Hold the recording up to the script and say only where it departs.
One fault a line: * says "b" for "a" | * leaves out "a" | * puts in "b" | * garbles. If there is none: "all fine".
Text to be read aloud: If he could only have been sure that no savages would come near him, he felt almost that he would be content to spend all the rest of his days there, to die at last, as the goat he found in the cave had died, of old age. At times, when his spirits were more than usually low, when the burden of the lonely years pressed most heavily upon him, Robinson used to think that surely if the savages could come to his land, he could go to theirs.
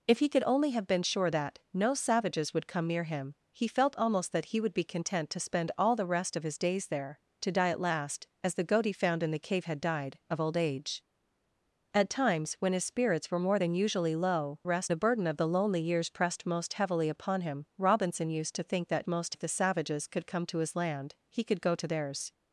* says "rest" for "when"
* says "most" for "surely"